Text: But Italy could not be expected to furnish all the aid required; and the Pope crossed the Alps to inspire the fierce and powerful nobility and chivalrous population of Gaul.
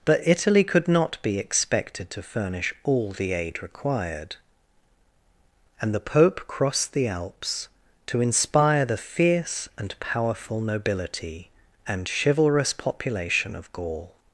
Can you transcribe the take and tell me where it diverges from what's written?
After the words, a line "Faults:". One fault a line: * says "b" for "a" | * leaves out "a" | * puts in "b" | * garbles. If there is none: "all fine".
But Italy could not be expected to furnish all the aid required; and the Pope crossed the Alps to inspire the fierce and powerful nobility and chivalrous population of Gaul.
Faults:
all fine